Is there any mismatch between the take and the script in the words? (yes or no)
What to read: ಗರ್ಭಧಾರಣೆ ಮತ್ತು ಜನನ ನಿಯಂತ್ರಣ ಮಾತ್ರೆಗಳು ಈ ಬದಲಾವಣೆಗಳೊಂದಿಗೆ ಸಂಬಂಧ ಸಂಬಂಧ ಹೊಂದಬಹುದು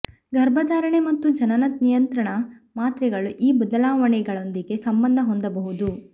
yes